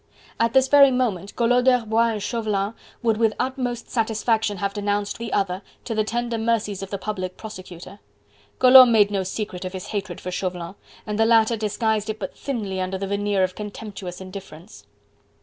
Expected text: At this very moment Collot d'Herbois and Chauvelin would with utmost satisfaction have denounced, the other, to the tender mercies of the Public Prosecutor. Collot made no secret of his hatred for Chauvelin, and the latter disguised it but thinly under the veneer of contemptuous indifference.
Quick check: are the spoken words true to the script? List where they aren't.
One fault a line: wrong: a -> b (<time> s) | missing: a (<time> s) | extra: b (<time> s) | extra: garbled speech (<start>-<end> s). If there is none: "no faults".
no faults